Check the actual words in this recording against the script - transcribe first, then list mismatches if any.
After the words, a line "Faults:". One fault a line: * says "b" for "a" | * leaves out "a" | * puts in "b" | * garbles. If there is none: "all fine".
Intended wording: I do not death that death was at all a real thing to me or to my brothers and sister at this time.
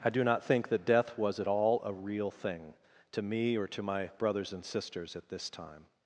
I do not think that death was at all a real thing to me or to my brothers and sisters at this time.
Faults:
* says "think" for "death"
* says "sisters" for "sister"